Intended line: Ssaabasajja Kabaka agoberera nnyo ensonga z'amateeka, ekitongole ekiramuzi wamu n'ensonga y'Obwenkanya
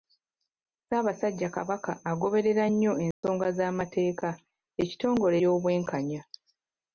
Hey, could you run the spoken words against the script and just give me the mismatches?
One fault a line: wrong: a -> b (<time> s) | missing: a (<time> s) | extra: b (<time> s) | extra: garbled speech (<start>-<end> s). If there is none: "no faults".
missing: ekiramuzi wamu n'ensonga (5.3 s)